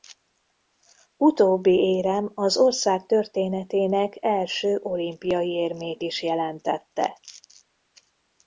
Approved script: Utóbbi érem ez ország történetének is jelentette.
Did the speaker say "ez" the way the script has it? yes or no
no